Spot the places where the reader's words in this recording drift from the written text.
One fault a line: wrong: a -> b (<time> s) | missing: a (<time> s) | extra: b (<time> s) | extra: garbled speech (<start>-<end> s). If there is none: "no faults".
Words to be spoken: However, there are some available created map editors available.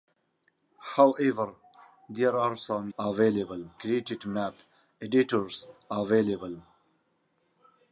no faults